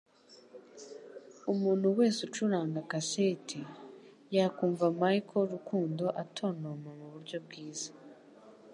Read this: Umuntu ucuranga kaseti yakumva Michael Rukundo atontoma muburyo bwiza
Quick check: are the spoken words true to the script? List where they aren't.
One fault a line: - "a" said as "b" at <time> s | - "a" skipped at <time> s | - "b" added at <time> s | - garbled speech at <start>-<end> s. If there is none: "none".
- "wese" added at 2.0 s